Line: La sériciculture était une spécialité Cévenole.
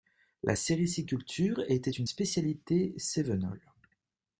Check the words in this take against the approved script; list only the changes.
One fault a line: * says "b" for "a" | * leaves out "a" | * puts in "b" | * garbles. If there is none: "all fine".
all fine